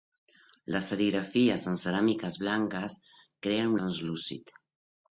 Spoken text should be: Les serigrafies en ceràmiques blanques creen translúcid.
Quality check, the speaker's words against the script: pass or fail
pass